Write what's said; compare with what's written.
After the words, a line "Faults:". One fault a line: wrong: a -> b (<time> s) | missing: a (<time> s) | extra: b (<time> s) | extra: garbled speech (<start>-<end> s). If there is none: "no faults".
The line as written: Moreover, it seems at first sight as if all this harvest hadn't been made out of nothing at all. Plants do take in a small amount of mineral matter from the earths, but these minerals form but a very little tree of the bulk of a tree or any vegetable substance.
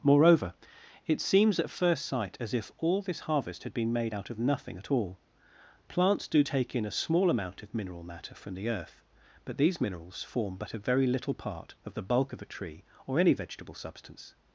Moreover, it seems at first sight as if all this harvest had been made out of nothing at all. Plants do take in a small amount of mineral matter from the earth, but these minerals form but a very little part of the bulk of a tree or any vegetable substance.
Faults:
wrong: hadn't -> had (3.6 s)
wrong: earths -> earth (8.7 s)
wrong: tree -> part (11.3 s)